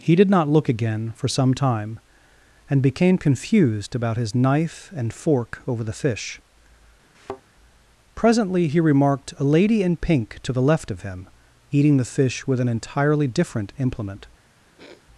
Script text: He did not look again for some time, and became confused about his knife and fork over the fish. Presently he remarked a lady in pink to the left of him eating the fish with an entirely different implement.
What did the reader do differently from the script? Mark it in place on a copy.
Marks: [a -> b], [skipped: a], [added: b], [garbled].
He did not look again for some time, and became confused about his knife and fork over the fish. Presently he remarked a lady in pink to the left of him eating the fish with an entirely different implement.